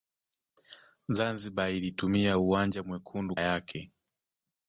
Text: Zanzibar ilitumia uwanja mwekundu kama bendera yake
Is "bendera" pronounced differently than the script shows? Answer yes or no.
yes